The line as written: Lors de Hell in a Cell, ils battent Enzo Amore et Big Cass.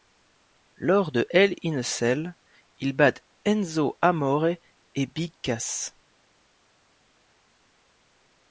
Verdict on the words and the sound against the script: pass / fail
pass